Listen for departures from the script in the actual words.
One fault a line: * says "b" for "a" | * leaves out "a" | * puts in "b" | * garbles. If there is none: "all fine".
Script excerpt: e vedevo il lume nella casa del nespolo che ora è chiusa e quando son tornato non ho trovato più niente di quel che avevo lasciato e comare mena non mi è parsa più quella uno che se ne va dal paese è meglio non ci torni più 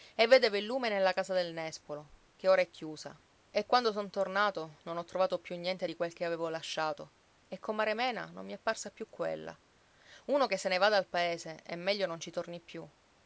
all fine